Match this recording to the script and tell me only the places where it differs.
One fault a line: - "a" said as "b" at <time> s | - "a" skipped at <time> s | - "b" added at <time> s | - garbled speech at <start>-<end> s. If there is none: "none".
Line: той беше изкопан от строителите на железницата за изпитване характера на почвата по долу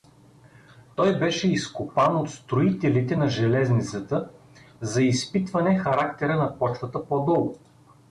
none